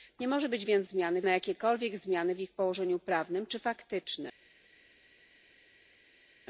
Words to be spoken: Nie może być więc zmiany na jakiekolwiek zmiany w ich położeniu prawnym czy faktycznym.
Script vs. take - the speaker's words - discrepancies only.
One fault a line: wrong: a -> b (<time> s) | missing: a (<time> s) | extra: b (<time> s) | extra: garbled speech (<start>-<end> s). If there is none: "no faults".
no faults